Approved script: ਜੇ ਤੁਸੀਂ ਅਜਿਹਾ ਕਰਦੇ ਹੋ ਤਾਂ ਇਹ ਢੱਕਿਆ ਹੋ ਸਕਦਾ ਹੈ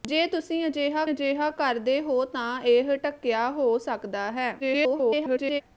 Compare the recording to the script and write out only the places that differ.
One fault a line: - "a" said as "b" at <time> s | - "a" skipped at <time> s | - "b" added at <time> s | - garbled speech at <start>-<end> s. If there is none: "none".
- "ਅਜਿਹਾ" added at 1.1 s
- garbled speech at 4.6-5.6 s